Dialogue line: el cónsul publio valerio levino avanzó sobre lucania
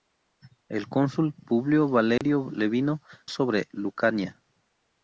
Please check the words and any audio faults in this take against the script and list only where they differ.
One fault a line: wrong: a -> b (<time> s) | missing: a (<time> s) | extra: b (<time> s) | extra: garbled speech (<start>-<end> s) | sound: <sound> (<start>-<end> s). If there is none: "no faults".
sound: dropout (2.2-2.2 s)
missing: avanzó (3.0 s)